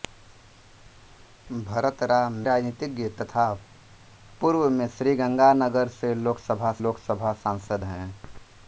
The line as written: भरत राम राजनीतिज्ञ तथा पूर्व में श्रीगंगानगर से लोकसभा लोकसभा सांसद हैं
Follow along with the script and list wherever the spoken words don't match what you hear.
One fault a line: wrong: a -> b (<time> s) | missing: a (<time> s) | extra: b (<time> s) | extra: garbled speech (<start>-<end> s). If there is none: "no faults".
no faults